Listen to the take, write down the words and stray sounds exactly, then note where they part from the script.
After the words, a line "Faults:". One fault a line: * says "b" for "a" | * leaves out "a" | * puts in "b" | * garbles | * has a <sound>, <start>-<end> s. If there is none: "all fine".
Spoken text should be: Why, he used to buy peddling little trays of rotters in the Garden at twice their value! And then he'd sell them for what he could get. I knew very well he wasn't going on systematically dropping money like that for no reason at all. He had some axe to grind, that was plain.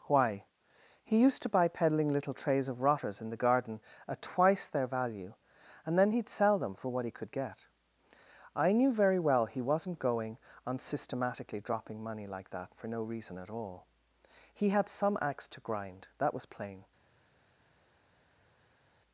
Why, he used to buy peddling little trays of rotters in the Garden at twice their value! And then he'd sell them for what he could get. I knew very well he wasn't going on systematically dropping money like that for no reason at all. He had some axe to grind, that was plain.
Faults:
all fine